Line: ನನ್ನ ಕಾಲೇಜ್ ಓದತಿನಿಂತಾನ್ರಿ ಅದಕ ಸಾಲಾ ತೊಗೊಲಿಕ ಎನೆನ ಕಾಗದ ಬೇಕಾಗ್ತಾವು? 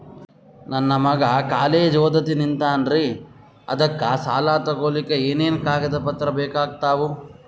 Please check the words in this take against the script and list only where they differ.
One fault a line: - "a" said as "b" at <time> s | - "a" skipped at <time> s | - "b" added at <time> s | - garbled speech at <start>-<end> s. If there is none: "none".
- "ಮಗ" added at 1.0 s
- "ಪತ್ರ" added at 6.1 s